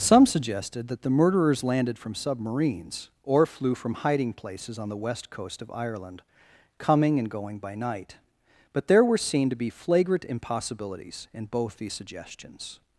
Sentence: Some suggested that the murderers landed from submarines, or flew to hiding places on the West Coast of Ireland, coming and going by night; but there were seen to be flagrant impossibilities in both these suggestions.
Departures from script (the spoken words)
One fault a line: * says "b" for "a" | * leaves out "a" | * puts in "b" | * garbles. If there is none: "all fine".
* says "from" for "to"